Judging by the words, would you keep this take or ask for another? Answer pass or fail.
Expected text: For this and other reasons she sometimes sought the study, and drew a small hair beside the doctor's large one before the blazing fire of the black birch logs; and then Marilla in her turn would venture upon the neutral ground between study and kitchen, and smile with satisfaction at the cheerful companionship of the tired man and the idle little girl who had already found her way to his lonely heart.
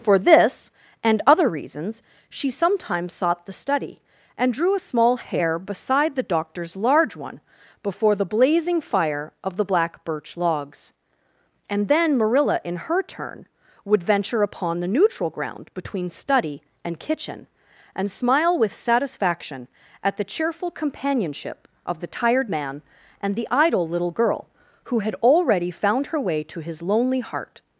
pass